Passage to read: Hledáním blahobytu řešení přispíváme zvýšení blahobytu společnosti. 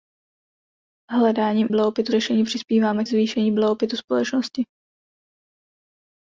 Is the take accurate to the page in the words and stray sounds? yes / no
yes